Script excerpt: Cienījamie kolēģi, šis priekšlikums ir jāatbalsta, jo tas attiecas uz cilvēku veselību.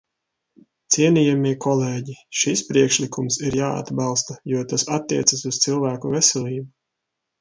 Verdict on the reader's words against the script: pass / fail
pass